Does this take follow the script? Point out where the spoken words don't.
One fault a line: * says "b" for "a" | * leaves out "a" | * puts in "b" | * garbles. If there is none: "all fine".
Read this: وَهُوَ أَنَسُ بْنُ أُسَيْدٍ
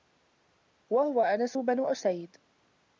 all fine